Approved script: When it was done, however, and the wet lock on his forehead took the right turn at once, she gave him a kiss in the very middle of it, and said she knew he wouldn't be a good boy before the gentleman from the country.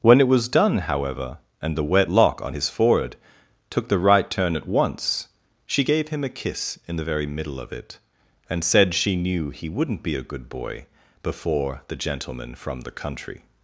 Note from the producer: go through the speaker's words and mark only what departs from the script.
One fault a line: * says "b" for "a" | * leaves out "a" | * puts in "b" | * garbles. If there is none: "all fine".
all fine